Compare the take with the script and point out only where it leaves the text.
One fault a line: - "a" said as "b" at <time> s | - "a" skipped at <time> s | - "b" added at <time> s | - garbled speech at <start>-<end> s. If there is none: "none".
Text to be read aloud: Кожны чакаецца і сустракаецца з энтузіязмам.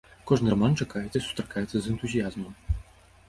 - "раман" added at 0.5 s